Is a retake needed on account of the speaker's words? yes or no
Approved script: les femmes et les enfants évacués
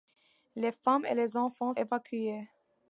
no